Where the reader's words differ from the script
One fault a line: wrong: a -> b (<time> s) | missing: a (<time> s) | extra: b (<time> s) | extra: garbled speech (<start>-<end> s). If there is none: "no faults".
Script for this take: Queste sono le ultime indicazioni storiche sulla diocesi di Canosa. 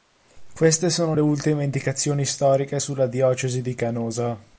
no faults